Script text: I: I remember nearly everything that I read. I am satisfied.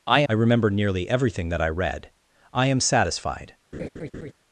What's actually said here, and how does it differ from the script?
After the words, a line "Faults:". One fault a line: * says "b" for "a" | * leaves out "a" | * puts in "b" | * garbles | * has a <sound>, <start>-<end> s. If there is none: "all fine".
I: I remember nearly everything that I read. I am satisfied.
Faults:
* has a laugh, 3.7-4.3 s